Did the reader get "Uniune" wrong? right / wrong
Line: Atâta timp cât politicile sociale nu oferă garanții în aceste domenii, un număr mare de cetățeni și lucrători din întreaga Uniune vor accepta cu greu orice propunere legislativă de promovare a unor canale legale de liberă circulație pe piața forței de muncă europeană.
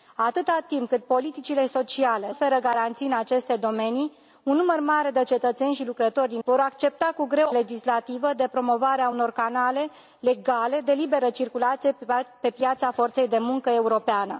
wrong